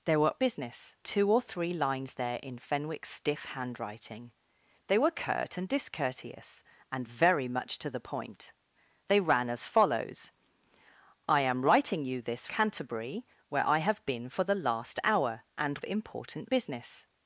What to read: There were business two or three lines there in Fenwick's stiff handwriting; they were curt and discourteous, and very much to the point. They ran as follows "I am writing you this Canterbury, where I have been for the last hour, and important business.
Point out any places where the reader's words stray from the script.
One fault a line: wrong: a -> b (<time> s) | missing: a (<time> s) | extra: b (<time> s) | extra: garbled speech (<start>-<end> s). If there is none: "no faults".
no faults